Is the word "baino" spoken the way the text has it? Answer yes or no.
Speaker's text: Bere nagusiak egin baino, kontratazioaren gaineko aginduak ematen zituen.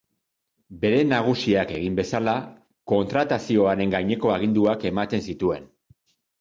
no